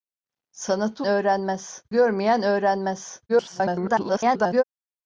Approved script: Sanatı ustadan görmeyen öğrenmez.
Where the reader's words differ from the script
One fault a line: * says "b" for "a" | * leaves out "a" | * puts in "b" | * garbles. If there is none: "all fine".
* says "öğrenmez" for "ustadan"
* garbles